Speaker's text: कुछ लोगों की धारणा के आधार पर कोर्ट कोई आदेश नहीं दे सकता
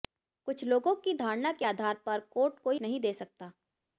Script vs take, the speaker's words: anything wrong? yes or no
yes